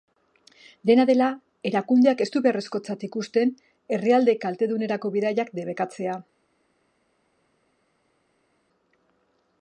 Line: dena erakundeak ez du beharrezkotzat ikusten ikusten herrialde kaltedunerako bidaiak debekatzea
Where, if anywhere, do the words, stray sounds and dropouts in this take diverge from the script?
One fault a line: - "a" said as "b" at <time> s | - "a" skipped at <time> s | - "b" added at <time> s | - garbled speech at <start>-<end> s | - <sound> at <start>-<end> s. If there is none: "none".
- "dela" added at 1.1 s
- "ikusten" skipped at 3.5 s